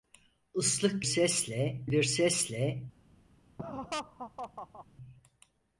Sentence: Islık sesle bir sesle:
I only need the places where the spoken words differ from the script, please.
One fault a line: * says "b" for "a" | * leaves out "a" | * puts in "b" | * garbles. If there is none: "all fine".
all fine